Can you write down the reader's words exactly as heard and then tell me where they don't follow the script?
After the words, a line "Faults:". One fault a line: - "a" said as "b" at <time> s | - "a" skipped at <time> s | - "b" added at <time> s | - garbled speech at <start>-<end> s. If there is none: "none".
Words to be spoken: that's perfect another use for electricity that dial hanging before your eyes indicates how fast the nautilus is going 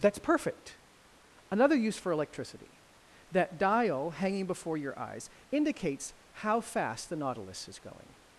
that's perfect another use for electricity that dial hanging before your eyes indicates how fast the nautilus is going
Faults:
none